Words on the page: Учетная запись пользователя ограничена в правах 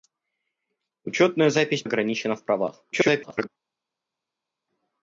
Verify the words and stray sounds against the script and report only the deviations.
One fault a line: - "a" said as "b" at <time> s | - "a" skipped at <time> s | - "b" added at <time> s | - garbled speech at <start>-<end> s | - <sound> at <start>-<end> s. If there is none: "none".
- "пользователя" skipped at 1.8 s
- garbled speech at 2.9-3.5 s